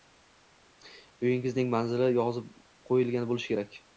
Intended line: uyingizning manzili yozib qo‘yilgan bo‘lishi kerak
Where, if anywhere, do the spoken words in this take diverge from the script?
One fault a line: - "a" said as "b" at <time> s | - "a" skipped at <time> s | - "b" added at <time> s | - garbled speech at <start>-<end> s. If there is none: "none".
none